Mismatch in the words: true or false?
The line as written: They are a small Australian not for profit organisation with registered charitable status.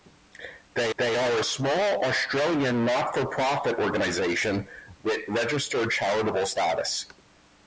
true